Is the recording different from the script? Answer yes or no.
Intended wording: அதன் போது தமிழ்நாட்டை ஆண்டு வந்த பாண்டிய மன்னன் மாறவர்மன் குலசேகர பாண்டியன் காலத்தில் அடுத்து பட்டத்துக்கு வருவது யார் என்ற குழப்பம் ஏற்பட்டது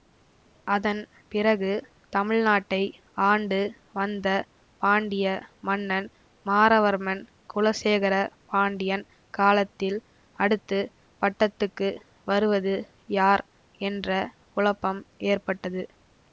yes